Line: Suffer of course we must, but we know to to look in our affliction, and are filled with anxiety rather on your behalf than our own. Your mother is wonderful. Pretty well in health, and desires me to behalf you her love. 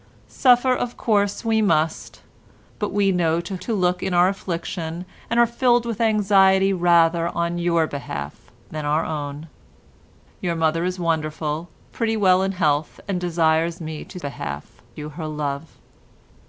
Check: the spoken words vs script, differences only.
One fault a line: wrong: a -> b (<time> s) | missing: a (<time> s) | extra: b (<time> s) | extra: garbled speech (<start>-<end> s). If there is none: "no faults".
no faults